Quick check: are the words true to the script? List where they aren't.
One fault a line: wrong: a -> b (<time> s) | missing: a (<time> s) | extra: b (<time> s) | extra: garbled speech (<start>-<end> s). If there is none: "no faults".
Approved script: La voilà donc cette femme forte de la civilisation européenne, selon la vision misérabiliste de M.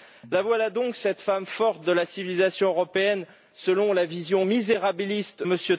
missing: de (5.4 s)